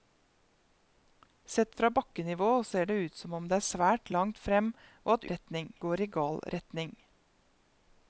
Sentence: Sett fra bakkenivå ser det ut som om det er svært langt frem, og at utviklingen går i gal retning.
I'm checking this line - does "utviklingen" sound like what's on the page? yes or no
no